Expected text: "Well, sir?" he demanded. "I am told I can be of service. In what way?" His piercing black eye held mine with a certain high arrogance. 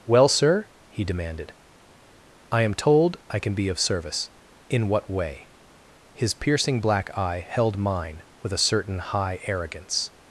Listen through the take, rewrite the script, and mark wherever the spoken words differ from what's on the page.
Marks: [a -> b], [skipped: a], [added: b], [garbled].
"Well, sir?" he demanded. "I am told I can be of service. In what way?" His piercing black eye held mine with a certain high arrogance.